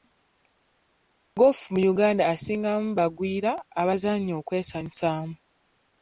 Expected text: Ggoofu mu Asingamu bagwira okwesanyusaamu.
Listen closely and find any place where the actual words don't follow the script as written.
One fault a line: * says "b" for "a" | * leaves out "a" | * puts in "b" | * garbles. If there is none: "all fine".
* puts in "Uganda"
* puts in "abazannya"